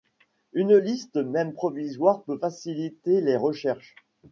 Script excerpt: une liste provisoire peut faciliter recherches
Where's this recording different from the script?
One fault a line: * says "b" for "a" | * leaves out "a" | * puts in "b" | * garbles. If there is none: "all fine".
* puts in "même"
* puts in "les"